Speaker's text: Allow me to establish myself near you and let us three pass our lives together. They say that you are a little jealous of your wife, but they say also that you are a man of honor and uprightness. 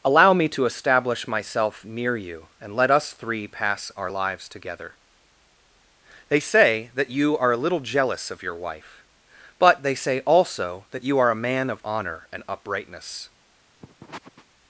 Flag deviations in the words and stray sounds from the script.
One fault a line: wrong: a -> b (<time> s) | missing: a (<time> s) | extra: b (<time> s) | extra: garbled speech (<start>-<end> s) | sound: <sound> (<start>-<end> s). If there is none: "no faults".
sound: sniff (13.8-14.5 s)